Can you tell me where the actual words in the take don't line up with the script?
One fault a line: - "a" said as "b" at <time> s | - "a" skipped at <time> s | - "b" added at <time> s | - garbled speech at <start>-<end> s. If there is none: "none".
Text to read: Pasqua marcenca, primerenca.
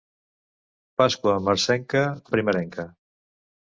none